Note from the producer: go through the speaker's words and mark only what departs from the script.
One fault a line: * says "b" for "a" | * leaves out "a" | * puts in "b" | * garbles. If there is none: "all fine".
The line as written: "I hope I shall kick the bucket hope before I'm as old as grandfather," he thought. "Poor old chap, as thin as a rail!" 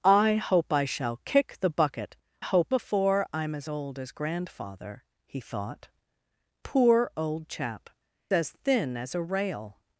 all fine